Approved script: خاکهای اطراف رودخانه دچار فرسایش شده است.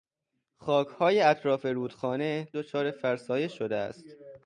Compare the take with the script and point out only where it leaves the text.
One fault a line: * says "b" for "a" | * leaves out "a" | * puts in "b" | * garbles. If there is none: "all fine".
all fine